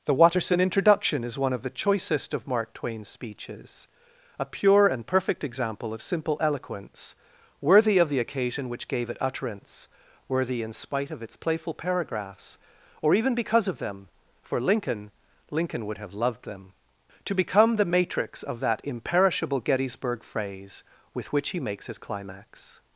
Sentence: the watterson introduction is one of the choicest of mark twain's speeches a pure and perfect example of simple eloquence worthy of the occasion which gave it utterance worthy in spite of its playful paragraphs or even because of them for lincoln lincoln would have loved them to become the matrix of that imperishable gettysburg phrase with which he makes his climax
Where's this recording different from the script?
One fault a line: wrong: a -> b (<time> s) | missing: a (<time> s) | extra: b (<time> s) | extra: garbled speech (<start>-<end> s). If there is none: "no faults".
no faults